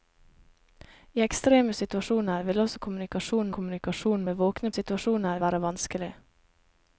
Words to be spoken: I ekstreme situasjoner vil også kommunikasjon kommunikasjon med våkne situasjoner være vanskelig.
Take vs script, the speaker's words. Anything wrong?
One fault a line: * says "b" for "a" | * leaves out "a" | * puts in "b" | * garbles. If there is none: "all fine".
all fine